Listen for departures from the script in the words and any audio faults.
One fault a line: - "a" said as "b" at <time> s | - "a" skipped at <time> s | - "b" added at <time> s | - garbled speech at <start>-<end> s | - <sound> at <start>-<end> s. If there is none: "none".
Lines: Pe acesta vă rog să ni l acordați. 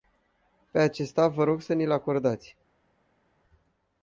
none